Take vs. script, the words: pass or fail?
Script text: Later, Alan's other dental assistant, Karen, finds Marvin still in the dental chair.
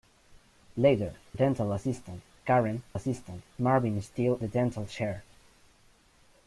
fail